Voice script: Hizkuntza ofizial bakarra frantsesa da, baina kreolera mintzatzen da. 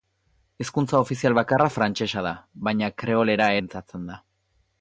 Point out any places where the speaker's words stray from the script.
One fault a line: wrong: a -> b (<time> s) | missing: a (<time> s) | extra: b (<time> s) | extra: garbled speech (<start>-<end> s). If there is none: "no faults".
no faults